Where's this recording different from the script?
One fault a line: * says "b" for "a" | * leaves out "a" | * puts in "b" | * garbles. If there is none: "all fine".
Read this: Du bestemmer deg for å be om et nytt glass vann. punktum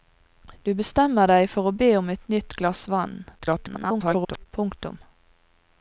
* garbles